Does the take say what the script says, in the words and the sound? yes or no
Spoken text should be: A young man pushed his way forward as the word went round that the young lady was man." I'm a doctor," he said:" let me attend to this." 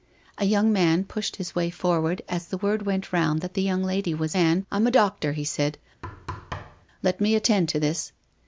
no